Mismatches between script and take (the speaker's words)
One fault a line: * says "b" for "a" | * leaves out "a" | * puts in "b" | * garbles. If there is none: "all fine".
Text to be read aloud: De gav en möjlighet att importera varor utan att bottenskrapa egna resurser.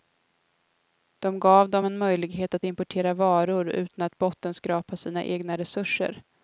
* puts in "dem"
* puts in "sina"